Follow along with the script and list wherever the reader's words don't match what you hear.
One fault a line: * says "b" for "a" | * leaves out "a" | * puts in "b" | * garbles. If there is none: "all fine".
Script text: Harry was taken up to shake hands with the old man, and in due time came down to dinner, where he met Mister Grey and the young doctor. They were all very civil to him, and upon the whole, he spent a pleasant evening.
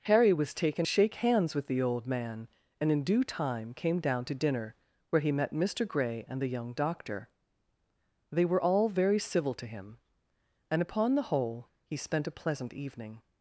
* leaves out "up to"